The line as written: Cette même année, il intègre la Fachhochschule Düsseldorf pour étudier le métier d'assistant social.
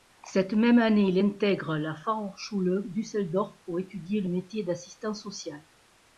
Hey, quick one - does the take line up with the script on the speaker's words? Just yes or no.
yes